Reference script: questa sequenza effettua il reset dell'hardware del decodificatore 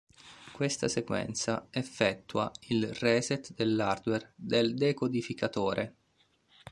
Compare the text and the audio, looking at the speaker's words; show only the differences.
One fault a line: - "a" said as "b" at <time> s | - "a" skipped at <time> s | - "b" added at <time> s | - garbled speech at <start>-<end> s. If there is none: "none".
none